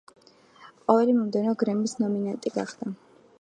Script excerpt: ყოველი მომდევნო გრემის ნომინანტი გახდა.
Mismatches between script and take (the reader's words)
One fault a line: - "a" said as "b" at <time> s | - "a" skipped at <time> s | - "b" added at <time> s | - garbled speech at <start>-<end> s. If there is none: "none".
none